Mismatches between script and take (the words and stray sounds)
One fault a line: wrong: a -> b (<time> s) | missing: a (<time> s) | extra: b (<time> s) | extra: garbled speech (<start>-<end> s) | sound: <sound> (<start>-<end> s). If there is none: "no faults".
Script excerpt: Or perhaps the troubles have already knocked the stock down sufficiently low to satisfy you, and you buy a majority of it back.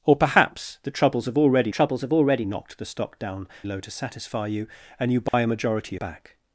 extra: troubles have already (1.7 s)
missing: sufficiently (3.5 s)
sound: dropout (5.3-5.3 s)
missing: of it (6.0 s)